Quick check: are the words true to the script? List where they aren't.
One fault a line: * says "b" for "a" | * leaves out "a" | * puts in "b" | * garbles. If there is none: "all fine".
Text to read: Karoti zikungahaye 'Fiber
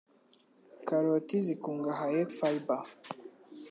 all fine